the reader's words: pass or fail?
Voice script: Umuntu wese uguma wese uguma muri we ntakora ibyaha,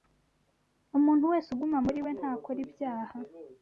fail